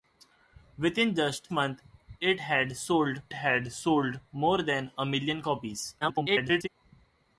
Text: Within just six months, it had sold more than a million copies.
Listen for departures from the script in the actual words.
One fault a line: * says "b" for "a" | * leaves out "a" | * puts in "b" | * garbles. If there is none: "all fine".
* leaves out "six"
* puts in "had sold"
* garbles